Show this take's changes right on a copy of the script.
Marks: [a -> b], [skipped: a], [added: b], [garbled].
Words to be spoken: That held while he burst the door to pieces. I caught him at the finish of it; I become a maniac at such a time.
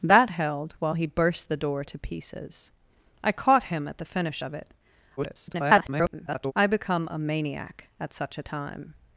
That held while he burst the door to pieces. I caught him at the finish of it; [garbled] I become a maniac at such a time.